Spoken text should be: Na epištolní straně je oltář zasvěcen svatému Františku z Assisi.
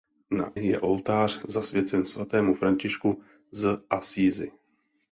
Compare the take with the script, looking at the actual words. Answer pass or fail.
fail